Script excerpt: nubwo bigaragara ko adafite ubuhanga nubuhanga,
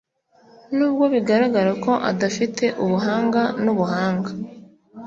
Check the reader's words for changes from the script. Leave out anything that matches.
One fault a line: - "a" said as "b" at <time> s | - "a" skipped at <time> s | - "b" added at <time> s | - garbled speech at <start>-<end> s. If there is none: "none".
none